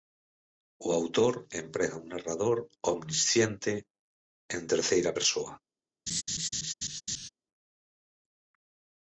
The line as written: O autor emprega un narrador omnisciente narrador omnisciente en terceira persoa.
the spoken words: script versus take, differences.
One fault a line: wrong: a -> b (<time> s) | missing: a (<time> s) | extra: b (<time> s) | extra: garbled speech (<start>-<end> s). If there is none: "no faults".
missing: narrador omnisciente (3.7 s)